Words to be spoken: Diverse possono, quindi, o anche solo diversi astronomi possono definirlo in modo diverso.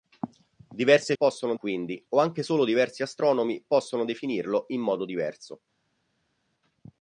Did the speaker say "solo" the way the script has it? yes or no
yes